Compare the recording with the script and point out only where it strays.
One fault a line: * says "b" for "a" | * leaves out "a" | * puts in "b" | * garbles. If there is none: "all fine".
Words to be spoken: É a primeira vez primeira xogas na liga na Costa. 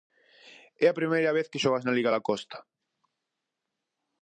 * says "que" for "primeira"
* says "da" for "na"